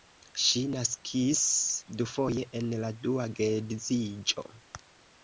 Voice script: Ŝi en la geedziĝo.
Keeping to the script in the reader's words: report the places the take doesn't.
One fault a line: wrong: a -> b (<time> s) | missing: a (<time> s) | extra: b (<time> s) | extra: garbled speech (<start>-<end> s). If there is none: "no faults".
extra: naskis dufoje (0.8 s)
extra: dua (3.0 s)